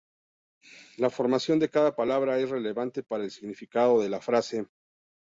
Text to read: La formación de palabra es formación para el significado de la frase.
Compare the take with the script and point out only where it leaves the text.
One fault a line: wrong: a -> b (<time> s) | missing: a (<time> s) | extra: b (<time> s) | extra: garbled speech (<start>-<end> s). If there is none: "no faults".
extra: cada (1.7 s)
wrong: formación -> relevante (2.5 s)